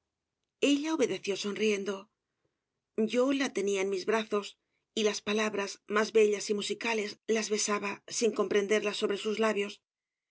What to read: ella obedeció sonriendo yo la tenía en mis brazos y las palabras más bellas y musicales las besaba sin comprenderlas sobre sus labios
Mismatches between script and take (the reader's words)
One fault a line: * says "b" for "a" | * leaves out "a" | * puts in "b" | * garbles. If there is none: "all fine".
all fine